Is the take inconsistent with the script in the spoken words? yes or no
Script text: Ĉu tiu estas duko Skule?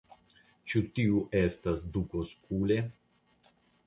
no